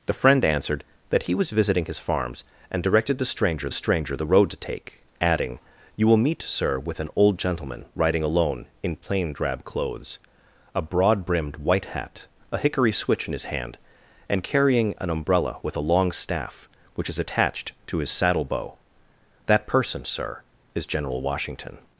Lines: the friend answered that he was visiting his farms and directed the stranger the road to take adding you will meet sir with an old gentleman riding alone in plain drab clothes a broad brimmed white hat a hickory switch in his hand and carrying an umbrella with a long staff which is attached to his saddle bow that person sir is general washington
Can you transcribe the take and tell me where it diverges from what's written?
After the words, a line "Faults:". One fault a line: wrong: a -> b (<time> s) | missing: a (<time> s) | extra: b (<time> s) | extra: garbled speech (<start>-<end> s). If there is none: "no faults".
the friend answered that he was visiting his farms and directed the stranger stranger the road to take adding you will meet sir with an old gentleman riding alone in plain drab clothes a broad brimmed white hat a hickory switch in his hand and carrying an umbrella with a long staff which is attached to his saddle bow that person sir is general washington
Faults:
extra: stranger (3.7 s)